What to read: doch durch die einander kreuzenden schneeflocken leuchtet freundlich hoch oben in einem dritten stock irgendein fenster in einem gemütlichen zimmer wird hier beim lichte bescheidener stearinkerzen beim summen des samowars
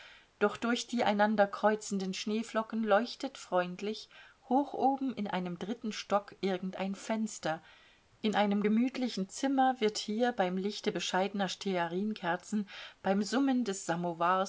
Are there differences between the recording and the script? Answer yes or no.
no